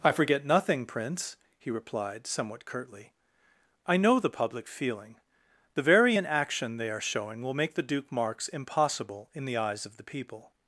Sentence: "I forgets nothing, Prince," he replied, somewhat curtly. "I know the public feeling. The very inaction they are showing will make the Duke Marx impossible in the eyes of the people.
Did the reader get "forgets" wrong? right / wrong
wrong